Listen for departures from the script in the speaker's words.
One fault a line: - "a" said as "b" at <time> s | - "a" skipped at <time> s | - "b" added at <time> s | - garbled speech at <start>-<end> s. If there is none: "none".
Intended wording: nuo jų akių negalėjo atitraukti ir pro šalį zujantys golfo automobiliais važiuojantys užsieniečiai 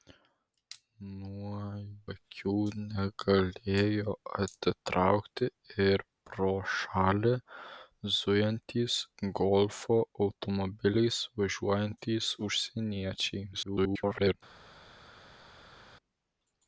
- "jų" skipped at 1.6 s
- garbled speech at 13.5-14.3 s